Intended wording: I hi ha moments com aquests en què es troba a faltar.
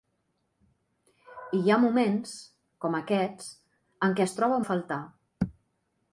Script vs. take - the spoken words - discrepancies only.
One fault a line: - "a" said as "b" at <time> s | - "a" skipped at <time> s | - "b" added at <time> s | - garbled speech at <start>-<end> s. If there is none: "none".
none